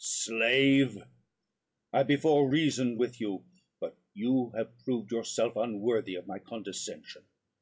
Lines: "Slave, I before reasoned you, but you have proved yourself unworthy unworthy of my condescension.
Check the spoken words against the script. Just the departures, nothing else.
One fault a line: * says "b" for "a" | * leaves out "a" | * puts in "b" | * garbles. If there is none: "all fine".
* puts in "with"
* leaves out "unworthy"